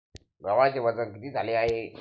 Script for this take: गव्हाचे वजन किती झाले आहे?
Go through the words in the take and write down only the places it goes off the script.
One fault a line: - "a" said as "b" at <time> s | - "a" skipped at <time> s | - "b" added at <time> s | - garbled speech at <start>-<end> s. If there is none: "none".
none